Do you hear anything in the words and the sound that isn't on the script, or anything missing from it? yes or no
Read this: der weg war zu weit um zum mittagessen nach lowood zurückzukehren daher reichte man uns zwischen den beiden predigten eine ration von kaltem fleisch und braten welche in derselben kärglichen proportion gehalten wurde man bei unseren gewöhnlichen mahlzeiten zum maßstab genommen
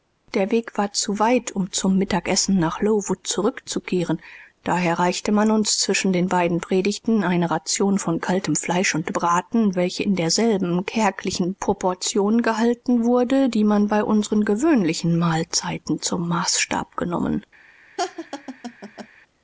yes